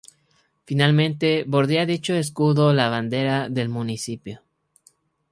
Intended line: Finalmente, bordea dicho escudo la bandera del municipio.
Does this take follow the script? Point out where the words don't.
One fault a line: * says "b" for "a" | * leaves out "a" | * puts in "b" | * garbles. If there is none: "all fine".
all fine